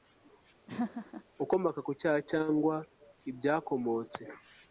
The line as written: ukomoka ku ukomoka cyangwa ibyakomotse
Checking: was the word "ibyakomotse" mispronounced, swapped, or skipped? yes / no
no